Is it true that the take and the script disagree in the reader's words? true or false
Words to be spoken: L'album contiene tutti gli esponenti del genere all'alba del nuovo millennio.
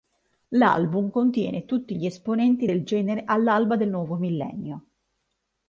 false